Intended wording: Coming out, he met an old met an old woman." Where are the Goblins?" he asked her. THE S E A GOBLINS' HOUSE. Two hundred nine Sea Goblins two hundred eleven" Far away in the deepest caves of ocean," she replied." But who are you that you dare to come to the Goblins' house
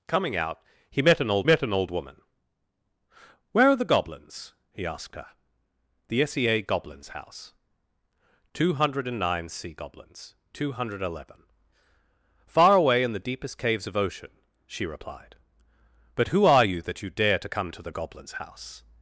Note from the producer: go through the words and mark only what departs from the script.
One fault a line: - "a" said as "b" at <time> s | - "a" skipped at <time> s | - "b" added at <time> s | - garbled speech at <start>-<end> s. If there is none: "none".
none